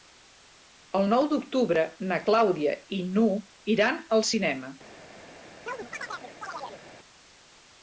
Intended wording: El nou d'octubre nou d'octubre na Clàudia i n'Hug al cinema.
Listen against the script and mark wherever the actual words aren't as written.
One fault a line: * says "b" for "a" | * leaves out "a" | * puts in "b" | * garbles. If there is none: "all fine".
* leaves out "nou d'octubre"
* puts in "iran"